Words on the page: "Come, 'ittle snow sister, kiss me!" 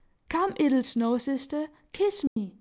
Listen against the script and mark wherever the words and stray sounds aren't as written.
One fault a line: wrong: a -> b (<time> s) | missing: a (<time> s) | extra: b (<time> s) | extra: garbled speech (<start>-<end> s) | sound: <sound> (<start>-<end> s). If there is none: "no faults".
sound: dropout (2.3-2.4 s)